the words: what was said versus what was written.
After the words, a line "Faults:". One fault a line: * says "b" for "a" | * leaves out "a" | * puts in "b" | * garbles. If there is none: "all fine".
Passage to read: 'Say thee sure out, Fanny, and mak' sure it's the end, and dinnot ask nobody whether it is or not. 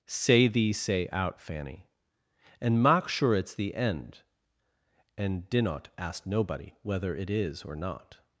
'Say thee say out, Fanny, and mak' sure it's the end, and dinnot ask nobody whether it is or not.
Faults:
* says "say" for "sure"